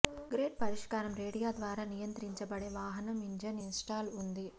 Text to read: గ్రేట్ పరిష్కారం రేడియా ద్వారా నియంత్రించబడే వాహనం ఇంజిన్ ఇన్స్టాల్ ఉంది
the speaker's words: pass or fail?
pass